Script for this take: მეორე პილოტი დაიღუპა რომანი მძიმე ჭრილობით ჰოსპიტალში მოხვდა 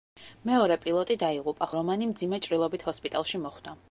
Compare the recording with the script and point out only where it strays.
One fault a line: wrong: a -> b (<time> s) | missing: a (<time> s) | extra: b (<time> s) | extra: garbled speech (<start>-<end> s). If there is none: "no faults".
no faults